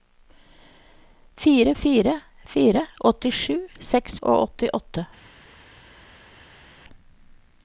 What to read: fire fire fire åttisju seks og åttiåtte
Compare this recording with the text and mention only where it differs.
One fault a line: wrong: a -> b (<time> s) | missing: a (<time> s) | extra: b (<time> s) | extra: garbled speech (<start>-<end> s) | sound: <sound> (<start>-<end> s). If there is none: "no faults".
no faults